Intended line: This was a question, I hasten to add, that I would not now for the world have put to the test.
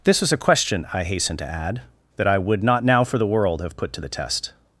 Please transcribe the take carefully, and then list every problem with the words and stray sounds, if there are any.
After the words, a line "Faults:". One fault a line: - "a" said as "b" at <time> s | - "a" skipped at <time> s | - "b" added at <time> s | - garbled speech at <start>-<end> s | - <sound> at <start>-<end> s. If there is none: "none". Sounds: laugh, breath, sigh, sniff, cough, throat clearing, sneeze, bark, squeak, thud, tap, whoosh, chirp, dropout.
This was a question, I hasten to add, that I would not now for the world have put to the test.
Faults:
none